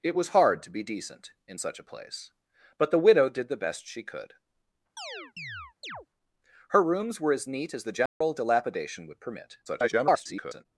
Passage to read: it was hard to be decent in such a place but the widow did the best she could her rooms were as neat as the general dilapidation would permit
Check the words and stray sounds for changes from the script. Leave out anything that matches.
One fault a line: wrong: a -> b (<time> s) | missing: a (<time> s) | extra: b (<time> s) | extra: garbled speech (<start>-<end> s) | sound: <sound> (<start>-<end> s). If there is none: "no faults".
sound: chirp (5.0-6.1 s)
sound: dropout (8.1-8.2 s)
extra: garbled speech (9.7-10.7 s)